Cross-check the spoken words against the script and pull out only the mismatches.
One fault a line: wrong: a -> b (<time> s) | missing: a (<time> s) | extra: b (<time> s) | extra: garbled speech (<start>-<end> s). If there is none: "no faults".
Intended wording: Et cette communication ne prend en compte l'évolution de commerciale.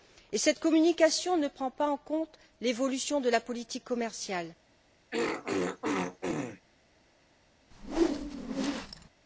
extra: pas (1.7 s)
extra: la politique (3.3 s)